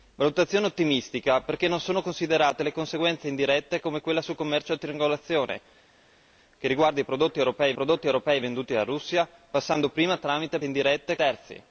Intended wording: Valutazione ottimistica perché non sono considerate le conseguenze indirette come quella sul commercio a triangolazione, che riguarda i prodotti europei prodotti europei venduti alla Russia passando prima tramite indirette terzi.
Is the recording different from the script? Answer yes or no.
no